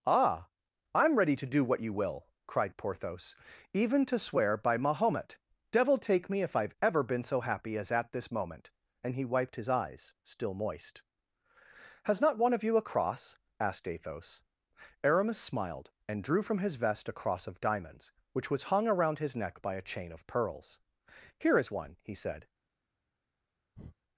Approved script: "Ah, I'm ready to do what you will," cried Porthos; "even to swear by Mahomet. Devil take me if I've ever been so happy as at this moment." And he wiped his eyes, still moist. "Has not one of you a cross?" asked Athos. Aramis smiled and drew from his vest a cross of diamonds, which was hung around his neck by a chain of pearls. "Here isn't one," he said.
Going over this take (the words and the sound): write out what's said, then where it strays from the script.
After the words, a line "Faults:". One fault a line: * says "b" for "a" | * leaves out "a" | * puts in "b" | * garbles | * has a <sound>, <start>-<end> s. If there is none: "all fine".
"Ah, I'm ready to do what you will," cried Porthos; "even to swear by Mahomet. Devil take me if I've ever been so happy as at this moment." And he wiped his eyes, still moist. "Has not one of you a cross?" asked Athos. Aramis smiled and drew from his vest a cross of diamonds, which was hung around his neck by a chain of pearls. "Here is one," he said.
Faults:
* says "is" for "isn't"
* has a breath, 23.7-24.0 s